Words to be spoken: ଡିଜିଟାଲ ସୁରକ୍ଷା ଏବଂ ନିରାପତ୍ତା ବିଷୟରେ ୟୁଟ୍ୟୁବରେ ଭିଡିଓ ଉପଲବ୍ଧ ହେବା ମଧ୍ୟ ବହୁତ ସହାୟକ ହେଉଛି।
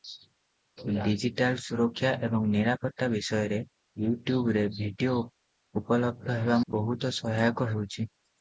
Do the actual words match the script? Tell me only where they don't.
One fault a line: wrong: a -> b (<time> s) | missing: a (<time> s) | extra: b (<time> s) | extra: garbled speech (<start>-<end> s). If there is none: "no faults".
missing: ମଧ୍ୟ (6.6 s)